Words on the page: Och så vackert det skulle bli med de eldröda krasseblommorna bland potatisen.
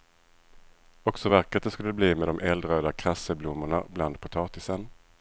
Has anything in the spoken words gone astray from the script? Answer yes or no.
no